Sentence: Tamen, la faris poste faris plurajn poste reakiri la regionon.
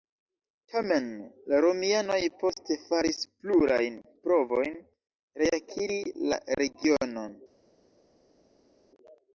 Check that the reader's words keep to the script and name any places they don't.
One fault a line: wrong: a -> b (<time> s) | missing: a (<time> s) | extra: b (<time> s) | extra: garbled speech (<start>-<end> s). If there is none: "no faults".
wrong: faris -> romianoj (1.6 s)
wrong: poste -> provojn (4.3 s)